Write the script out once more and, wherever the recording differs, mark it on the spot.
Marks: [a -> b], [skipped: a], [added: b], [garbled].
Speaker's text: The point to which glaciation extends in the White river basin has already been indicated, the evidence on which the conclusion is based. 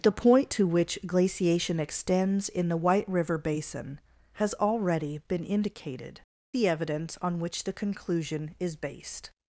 The point to which glaciation extends in the White river basin has already been indicated, the evidence on which the conclusion is based.